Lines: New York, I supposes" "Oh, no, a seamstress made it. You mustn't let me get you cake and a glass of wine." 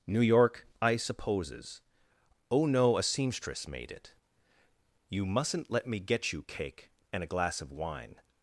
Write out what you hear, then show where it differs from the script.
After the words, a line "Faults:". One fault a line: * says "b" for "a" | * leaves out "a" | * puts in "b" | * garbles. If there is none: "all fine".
New York, I supposes" "Oh, no, a seamstress made it. You mustn't let me get you cake and a glass of wine."
Faults:
all fine